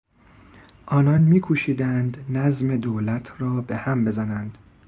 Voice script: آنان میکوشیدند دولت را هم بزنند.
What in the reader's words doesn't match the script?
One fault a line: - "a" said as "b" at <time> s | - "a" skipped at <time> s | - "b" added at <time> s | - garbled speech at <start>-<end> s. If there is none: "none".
- "نظم" added at 2.3 s
- "به" added at 3.6 s